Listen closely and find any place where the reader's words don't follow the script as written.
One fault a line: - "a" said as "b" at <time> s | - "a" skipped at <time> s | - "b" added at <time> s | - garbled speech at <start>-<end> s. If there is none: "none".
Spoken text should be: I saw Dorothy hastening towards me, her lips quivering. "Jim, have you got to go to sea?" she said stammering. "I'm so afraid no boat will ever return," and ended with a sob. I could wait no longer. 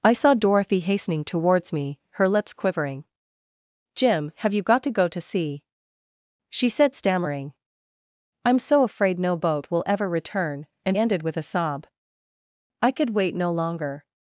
none